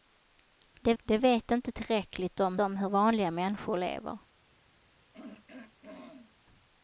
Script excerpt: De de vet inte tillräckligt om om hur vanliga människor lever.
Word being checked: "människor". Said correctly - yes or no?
yes